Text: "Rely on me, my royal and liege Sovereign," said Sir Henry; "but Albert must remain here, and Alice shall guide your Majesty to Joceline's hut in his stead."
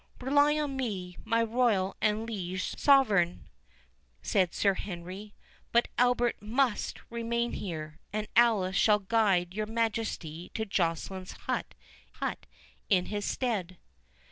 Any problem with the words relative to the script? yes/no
yes